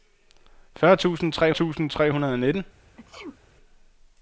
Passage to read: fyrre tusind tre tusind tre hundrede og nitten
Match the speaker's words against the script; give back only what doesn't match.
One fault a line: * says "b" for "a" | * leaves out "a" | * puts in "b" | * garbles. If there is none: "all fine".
all fine